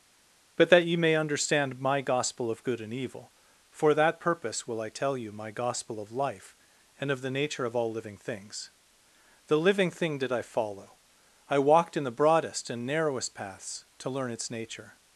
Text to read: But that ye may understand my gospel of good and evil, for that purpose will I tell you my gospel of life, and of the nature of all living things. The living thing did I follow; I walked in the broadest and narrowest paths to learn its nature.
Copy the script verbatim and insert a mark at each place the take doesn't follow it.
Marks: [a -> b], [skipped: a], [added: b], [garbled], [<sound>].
But that ye may understand my gospel of good and evil, for that purpose will I tell you my gospel of life, and of the nature of all living things. The living thing did I follow; I walked in the broadest and narrowest paths to learn its nature.